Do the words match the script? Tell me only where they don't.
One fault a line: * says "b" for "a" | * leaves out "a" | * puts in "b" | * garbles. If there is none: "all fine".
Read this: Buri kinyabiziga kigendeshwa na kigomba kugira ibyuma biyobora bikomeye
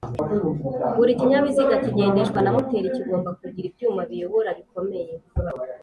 * puts in "moteri"